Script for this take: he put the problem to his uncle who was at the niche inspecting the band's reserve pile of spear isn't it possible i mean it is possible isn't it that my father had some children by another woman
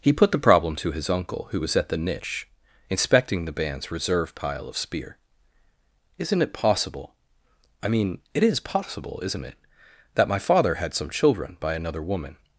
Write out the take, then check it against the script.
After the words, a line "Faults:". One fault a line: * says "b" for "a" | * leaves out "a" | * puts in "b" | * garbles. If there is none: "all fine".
he put the problem to his uncle who was at the niche inspecting the band's reserve pile of spear isn't it possible i mean it is possible isn't it that my father had some children by another woman
Faults:
all fine